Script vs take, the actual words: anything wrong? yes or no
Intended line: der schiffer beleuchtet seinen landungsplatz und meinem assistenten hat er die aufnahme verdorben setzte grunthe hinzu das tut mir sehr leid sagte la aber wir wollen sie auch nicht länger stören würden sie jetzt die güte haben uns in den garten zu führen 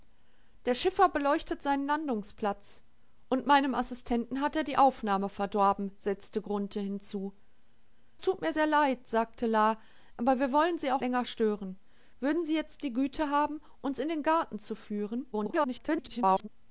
yes